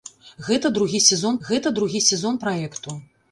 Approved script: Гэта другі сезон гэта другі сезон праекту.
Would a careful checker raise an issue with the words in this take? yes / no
no